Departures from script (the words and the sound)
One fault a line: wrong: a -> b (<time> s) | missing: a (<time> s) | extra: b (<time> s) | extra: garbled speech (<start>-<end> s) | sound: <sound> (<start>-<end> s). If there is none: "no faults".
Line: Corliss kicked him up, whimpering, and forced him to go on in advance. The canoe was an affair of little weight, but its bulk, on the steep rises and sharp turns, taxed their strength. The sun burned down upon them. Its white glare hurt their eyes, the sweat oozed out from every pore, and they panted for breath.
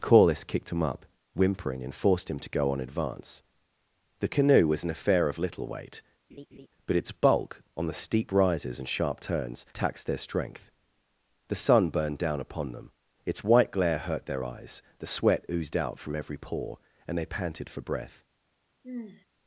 missing: in (2.8 s)
sound: laugh (6.3-6.7 s)
sound: sigh (18.8-19.3 s)